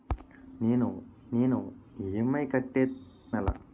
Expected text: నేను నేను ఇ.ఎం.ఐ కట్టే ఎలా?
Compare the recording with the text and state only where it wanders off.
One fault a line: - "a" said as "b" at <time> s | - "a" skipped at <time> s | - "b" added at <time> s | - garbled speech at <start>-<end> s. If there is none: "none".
none